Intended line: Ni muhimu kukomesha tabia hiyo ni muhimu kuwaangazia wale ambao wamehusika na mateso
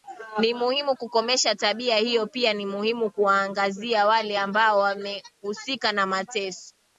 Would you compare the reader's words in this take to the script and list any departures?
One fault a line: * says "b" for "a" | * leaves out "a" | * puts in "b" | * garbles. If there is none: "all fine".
* puts in "pia"